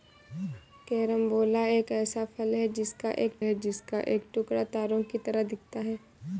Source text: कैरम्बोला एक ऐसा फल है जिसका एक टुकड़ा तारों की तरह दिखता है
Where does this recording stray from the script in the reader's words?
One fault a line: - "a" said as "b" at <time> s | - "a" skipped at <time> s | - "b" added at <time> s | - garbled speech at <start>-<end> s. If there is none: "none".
- "है जिसका एक" added at 3.4 s